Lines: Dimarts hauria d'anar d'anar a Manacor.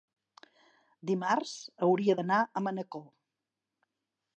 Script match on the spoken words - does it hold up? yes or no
no